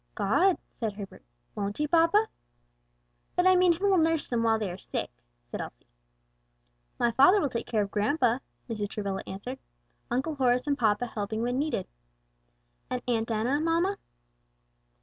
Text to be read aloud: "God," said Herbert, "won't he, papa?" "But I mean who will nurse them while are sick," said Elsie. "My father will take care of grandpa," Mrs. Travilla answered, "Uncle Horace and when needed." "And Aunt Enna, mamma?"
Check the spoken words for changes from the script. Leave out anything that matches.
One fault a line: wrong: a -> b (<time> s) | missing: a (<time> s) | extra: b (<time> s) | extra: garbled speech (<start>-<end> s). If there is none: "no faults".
extra: they (4.6 s)
extra: papa helping (10.8 s)